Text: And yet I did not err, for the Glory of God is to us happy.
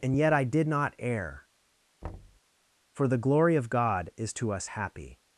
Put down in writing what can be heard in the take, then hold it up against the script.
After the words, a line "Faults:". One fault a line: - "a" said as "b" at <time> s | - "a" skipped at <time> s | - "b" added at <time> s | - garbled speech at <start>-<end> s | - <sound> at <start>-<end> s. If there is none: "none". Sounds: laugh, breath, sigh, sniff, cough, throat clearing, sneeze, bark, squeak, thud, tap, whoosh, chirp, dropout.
And yet I did not err, for the Glory of God is to us happy.
Faults:
- thud at 2.0-2.4 s